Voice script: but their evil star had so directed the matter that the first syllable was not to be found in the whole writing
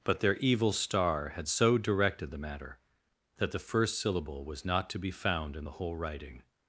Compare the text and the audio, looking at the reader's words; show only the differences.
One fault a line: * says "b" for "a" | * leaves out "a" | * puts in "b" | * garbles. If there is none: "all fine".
all fine